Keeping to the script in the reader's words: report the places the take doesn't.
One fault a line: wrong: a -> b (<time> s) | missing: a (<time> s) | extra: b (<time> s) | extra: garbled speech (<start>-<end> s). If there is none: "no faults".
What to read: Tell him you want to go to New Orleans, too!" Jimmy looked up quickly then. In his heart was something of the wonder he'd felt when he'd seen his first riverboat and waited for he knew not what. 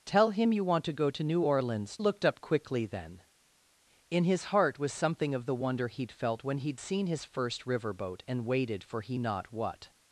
missing: too Jimmy (2.0 s)
missing: knew (9.2 s)